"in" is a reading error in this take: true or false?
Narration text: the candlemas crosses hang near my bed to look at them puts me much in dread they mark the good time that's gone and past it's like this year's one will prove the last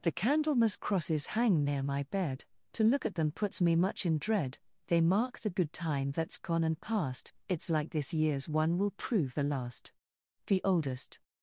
false